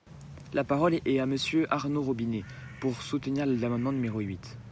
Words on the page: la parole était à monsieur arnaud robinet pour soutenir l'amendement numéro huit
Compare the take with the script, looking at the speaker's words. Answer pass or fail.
fail